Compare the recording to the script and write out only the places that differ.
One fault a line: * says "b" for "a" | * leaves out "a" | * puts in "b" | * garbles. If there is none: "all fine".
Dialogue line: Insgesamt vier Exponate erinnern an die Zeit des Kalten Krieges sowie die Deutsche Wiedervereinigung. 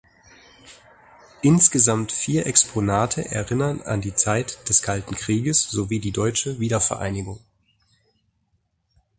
all fine